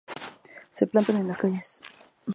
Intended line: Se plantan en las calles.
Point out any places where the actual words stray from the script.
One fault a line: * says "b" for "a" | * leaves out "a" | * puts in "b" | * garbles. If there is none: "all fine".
all fine